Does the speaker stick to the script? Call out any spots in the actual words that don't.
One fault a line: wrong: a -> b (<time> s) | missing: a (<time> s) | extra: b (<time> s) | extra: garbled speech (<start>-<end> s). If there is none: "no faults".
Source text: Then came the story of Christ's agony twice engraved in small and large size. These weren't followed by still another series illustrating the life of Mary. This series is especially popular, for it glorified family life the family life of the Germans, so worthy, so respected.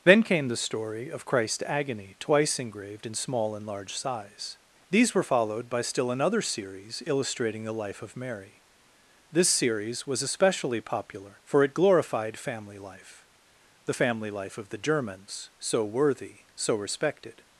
wrong: weren't -> were (5.1 s)
wrong: is -> was (10.1 s)